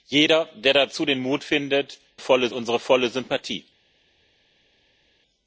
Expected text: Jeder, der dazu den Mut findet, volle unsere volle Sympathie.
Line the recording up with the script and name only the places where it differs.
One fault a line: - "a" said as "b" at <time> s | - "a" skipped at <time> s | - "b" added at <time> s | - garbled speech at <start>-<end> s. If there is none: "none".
none